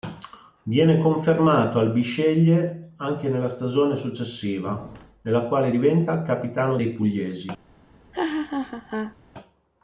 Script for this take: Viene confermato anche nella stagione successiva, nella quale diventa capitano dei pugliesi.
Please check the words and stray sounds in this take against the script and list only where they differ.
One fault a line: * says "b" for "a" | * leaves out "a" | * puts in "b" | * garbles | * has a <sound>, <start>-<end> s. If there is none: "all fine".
* puts in "al Bisceglie"
* has a laugh, 8.1-9.2 s